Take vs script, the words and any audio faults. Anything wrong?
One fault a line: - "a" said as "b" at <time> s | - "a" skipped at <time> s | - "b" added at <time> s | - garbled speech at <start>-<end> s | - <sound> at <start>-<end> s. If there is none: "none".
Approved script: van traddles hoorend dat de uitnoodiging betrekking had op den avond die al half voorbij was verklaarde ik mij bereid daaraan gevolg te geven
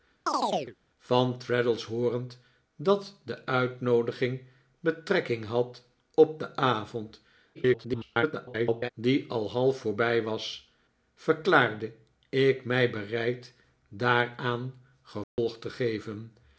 - chirp at 0.3-0.8 s
- garbled speech at 7.5-8.9 s
- dropout at 15.2-15.4 s